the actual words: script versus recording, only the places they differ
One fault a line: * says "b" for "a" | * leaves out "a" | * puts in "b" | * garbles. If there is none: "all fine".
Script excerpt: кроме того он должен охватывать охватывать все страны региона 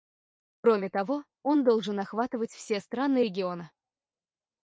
* leaves out "охватывать"